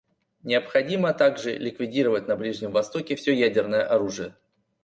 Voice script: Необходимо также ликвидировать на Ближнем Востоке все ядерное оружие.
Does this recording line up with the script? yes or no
yes